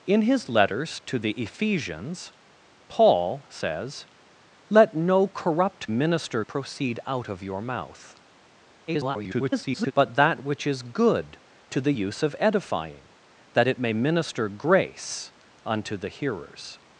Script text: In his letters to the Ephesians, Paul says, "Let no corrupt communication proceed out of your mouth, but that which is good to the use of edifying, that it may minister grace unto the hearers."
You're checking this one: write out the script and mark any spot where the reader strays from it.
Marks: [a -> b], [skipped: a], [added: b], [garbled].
In his letters to the Ephesians, Paul says, "Let no corrupt [communication -> minister] proceed out of your mouth, [garbled] but that which is good to the use of edifying, that it may minister grace unto the hearers."